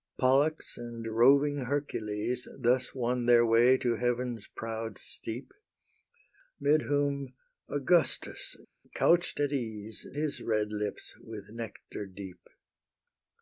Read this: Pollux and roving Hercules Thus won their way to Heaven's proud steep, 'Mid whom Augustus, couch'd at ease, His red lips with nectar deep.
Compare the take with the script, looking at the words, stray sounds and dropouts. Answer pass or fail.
pass